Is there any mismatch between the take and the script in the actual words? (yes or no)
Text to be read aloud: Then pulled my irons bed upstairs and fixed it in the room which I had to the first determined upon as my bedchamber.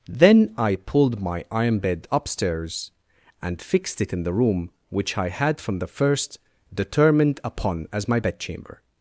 yes